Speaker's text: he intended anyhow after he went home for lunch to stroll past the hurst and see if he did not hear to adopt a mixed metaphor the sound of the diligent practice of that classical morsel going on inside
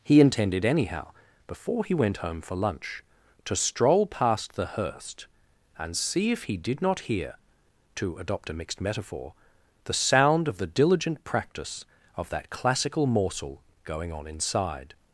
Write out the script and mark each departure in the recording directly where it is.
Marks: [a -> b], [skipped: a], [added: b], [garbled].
he intended anyhow [after -> before] he went home for lunch to stroll past the hurst and see if he did not hear to adopt a mixed metaphor the sound of the diligent practice of that classical morsel going on inside